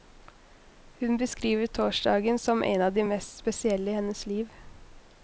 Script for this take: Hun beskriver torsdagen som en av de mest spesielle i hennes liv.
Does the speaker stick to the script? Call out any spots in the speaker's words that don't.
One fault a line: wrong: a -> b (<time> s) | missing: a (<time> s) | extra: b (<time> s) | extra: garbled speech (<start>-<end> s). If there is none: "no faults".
no faults